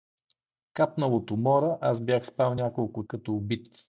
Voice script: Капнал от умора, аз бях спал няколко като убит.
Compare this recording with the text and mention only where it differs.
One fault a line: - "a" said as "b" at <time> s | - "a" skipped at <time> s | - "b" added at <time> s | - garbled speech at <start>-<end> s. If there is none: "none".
none